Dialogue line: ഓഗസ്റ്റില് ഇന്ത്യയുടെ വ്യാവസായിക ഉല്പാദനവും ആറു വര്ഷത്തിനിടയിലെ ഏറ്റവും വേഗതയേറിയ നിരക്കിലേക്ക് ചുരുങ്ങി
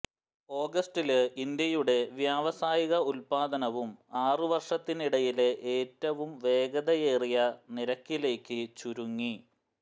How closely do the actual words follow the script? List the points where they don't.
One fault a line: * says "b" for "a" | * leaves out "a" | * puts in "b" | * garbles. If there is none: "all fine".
all fine